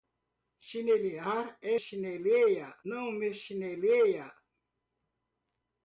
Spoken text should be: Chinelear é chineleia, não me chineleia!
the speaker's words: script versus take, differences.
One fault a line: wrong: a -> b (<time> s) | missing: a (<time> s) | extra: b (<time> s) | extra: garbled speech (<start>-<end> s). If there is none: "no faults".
no faults